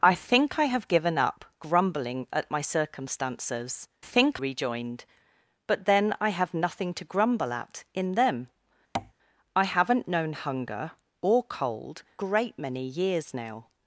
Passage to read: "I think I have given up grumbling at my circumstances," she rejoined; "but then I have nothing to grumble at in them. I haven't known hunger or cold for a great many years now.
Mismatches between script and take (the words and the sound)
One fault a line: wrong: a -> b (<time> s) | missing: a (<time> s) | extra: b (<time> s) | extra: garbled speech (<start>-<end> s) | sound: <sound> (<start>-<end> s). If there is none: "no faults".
wrong: she -> think (4.0 s)
sound: tap (8.9-9.1 s)
missing: for a (12.0 s)